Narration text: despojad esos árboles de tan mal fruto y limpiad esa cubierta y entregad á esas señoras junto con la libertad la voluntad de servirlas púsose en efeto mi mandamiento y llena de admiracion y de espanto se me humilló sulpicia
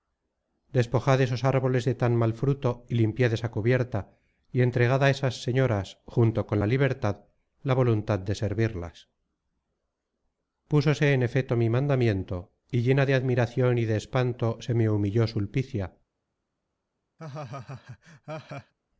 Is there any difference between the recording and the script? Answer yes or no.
no